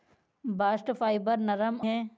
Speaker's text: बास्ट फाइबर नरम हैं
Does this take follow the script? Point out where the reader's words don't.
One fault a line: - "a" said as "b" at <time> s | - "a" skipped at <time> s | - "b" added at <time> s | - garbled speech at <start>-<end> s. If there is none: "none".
none